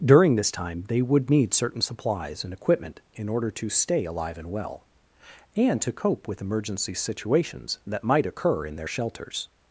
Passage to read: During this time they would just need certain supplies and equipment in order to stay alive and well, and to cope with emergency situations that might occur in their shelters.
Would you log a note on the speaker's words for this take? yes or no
yes